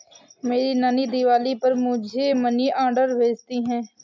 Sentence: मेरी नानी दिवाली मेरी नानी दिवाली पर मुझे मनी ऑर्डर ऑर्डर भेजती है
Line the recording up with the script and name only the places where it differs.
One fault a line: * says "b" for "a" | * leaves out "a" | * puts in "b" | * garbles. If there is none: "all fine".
* leaves out "मेरी नानी दिवाली"
* leaves out "ऑर्डर"